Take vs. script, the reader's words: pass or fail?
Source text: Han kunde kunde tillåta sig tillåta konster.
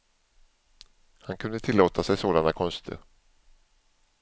fail